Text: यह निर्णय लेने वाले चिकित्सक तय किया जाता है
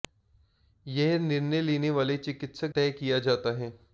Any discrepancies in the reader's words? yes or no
no